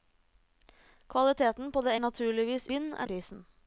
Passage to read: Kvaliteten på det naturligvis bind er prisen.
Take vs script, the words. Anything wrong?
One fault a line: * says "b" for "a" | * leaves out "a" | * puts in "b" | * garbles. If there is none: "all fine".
all fine